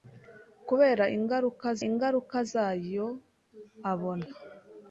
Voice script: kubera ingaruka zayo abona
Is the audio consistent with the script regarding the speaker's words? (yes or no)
no